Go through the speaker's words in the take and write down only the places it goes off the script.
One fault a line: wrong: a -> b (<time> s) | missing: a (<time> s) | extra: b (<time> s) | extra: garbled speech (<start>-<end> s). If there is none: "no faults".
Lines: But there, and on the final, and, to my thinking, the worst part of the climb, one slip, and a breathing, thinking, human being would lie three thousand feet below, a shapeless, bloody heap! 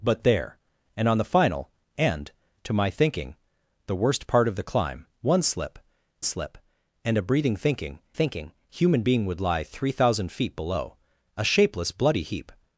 extra: slip (6.2 s)
extra: thinking (8.1 s)